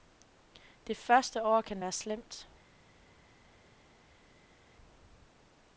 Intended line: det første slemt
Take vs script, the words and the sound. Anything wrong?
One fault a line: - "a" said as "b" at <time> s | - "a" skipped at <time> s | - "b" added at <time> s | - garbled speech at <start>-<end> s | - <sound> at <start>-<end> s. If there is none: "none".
- "år kan være" added at 1.4 s